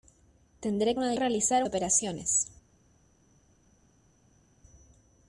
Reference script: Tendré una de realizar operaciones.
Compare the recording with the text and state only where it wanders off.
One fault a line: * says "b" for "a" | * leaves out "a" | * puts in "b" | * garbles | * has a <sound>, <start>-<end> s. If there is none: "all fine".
all fine